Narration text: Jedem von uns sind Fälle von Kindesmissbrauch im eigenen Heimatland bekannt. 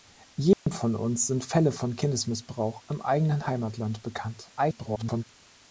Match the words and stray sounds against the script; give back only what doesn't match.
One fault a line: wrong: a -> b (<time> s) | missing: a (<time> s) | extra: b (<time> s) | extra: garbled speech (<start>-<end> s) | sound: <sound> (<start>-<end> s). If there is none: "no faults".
sound: dropout (0.5-0.7 s)
extra: garbled speech (4.6-5.2 s)